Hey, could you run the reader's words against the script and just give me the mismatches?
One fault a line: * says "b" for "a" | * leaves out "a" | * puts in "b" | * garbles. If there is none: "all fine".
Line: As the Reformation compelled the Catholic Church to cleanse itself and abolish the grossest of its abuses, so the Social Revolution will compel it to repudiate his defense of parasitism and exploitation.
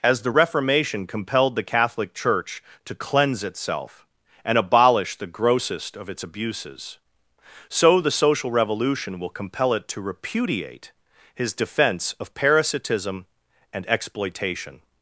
all fine